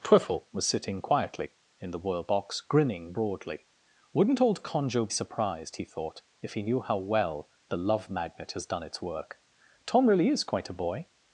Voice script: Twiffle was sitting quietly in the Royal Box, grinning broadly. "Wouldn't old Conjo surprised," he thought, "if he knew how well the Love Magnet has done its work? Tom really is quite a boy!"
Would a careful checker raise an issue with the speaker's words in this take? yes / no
no